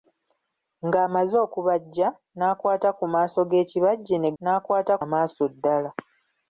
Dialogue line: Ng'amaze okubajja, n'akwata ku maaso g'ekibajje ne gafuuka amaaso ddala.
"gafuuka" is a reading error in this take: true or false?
true